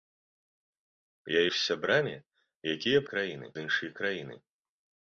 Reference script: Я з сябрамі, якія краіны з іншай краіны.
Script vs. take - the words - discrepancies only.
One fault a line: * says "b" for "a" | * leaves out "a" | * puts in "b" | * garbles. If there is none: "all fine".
all fine